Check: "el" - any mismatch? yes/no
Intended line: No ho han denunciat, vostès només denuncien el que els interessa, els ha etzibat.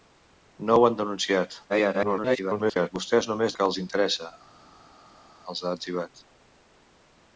yes